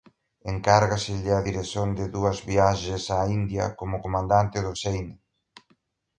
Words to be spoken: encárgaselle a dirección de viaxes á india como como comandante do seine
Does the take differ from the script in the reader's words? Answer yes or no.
yes